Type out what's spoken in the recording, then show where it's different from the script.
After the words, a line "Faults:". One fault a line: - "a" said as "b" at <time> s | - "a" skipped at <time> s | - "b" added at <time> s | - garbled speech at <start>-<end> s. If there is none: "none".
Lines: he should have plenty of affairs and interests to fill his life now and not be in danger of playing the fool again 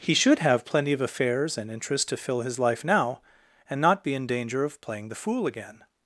he should have plenty of affairs and interests to fill his life now and not be in danger of playing the fool again
Faults:
none